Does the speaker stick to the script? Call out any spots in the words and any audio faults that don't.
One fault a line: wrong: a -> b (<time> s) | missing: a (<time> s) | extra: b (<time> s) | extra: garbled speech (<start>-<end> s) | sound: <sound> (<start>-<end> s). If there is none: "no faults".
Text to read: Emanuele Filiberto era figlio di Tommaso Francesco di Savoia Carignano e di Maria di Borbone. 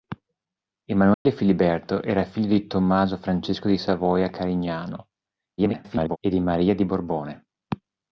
sound: dropout (1.1-1.3 s)
extra: garbled speech (5.6-6.2 s)